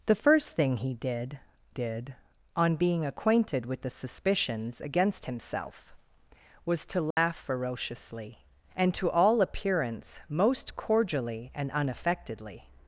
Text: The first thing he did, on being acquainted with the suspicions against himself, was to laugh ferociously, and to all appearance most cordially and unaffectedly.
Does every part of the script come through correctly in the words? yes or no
no